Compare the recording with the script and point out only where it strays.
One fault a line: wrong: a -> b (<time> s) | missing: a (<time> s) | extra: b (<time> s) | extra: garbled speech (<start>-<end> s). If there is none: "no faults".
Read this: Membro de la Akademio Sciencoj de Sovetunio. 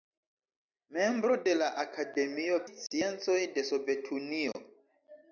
no faults